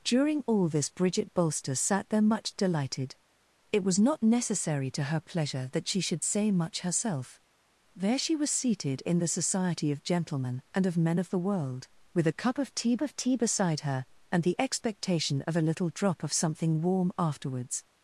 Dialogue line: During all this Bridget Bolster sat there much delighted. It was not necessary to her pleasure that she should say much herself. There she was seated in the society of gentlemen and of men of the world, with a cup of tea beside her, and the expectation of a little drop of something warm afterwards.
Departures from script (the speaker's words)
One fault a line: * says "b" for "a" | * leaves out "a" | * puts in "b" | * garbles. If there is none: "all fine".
* puts in "of tea"